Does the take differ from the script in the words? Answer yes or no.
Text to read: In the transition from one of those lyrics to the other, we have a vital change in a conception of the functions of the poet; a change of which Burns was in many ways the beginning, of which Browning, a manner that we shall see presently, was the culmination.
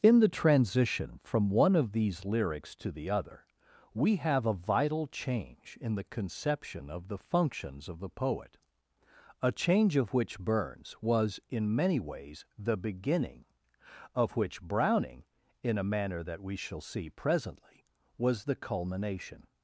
yes